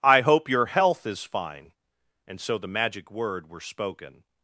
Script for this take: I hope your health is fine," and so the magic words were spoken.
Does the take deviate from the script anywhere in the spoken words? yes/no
yes